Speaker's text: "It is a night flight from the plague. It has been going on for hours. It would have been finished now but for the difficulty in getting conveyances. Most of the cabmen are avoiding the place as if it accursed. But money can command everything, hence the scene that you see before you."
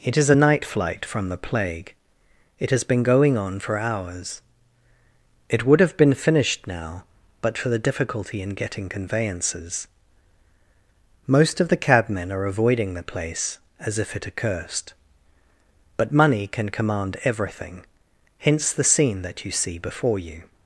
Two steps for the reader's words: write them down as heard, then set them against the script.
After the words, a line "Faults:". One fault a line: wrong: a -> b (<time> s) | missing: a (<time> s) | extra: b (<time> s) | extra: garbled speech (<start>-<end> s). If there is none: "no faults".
"It is a night flight from the plague. It has been going on for hours. It would have been finished now but for the difficulty in getting conveyances. Most of the cabmen are avoiding the place as if it accursed. But money can command everything, hence the scene that you see before you."
Faults:
no faults